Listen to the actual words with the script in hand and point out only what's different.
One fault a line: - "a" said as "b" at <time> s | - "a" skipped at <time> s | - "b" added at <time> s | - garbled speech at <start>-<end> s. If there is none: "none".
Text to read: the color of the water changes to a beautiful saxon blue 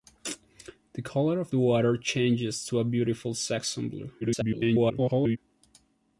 - garbled speech at 4.2-5.4 s